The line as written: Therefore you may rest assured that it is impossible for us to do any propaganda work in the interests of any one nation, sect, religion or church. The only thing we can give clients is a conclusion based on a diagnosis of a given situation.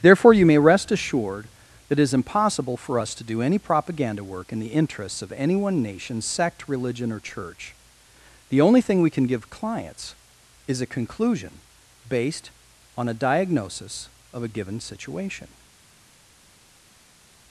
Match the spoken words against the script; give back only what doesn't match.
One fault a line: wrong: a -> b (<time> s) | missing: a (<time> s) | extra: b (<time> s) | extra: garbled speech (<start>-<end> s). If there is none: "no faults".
no faults